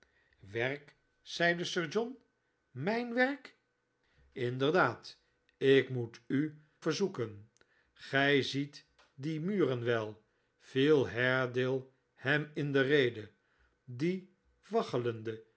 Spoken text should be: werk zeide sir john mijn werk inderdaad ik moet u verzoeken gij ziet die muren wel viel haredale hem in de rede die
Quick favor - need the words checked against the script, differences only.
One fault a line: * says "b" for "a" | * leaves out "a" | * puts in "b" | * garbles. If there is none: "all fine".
all fine